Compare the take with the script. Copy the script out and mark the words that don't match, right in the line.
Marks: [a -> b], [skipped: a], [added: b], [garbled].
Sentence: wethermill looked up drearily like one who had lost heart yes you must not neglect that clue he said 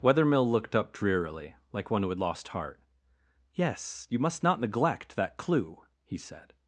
wethermill looked up drearily like one who had lost heart yes you must not neglect that clue he said